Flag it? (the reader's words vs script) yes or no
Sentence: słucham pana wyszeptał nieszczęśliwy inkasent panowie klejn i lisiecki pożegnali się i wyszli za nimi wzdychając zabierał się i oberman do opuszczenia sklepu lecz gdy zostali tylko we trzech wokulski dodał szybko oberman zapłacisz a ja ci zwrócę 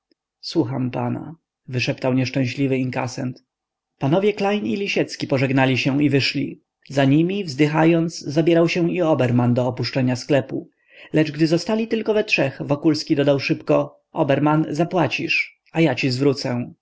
no